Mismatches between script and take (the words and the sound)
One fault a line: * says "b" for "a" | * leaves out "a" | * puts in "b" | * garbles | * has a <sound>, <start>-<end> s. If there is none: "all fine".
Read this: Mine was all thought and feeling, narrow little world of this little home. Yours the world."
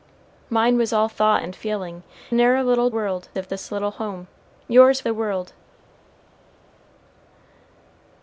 all fine